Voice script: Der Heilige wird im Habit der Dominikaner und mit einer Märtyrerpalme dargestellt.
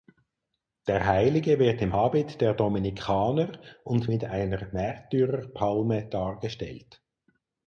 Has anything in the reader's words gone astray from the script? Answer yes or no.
no